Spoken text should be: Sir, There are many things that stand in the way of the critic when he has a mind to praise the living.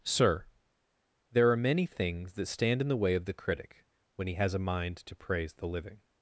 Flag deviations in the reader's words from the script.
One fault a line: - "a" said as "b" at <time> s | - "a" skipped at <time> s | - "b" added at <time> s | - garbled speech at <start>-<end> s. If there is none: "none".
none